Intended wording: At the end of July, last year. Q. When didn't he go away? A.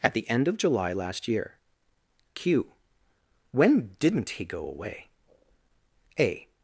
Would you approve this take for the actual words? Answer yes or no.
yes